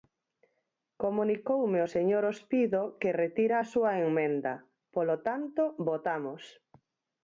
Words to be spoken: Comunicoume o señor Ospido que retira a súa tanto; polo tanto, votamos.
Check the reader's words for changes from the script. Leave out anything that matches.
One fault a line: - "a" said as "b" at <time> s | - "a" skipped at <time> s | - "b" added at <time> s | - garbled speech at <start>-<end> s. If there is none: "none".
- "tanto" said as "emenda" at 4.1 s